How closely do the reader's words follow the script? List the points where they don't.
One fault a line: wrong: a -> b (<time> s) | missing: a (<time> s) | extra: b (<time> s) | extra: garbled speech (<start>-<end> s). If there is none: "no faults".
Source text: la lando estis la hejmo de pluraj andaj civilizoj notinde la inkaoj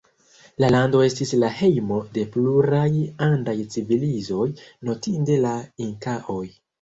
no faults